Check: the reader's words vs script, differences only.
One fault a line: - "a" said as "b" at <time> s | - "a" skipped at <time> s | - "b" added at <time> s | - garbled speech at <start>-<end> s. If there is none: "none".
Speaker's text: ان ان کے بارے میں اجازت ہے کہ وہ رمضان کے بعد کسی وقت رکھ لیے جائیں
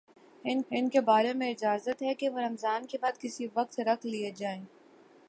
none